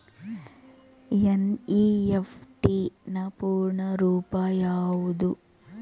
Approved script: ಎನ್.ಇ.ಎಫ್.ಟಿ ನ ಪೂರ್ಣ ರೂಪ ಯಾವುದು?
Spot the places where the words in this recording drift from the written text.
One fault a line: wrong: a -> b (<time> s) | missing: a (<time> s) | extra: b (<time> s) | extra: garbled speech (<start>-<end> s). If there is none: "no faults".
no faults